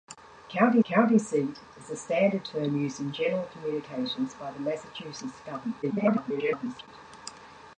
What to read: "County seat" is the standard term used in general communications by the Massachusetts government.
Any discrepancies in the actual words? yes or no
yes